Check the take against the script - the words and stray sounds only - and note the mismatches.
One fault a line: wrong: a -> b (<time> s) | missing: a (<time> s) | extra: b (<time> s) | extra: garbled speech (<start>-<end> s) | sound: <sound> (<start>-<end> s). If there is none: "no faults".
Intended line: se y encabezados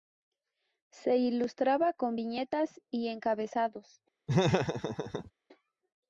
extra: ilustraba con viñetas (1.2 s)
sound: laugh (4.3-5.3 s)